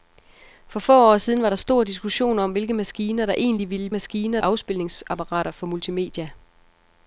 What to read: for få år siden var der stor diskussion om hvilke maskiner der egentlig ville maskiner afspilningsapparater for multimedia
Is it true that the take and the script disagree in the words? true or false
false